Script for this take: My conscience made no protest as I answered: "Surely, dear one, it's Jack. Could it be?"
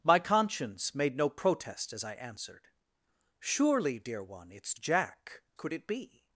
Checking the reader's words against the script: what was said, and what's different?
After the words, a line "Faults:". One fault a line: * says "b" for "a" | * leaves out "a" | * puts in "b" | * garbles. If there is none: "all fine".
My conscience made no protest as I answered: "Surely, dear one, it's Jack. Could it be?"
Faults:
all fine